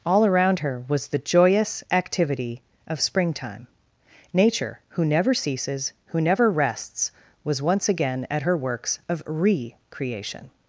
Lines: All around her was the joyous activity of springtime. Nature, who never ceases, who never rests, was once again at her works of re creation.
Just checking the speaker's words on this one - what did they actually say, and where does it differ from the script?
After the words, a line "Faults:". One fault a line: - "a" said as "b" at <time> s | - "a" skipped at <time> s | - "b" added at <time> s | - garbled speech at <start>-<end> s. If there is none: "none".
All around her was the joyous activity of springtime. Nature, who never ceases, who never rests, was once again at her works of re creation.
Faults:
none